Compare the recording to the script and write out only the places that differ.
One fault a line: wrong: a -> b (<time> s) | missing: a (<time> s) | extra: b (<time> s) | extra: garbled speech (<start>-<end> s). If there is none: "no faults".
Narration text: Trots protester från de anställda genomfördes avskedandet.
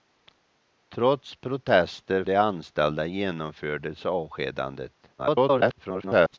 missing: från (2.2 s)
extra: garbled speech (5.2-6.4 s)